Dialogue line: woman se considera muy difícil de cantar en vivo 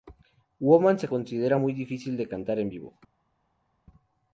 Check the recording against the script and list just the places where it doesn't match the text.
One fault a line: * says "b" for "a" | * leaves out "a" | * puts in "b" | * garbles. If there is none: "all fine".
all fine